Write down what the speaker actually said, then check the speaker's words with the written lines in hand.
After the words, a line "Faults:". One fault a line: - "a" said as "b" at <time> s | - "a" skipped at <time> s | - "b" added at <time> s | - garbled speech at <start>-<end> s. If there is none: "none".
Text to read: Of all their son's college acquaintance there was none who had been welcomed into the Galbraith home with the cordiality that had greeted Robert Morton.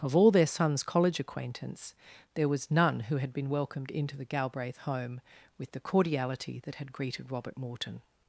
Of all their son's college acquaintance there was none who had been welcomed into the Galbraith home with the cordiality that had greeted Robert Morton.
Faults:
none